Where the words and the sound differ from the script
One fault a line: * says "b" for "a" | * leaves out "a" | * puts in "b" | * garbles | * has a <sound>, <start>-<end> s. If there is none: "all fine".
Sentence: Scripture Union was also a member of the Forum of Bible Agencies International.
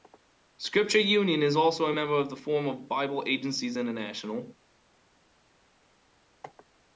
* says "is" for "was"